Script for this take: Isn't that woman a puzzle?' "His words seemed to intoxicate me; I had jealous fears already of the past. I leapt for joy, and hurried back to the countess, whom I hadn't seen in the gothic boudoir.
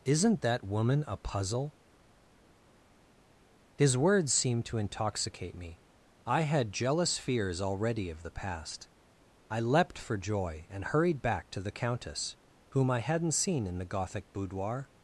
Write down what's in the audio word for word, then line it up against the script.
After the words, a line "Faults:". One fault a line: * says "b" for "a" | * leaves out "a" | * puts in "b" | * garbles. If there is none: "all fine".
Isn't that woman a puzzle?' "His words seemed to intoxicate me; I had jealous fears already of the past. I leapt for joy, and hurried back to the countess, whom I hadn't seen in the gothic boudoir.
Faults:
all fine